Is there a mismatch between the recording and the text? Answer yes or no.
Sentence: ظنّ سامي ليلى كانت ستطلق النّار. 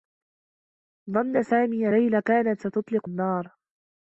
no